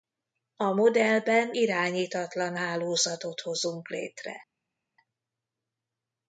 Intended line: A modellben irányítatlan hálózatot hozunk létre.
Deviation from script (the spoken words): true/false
false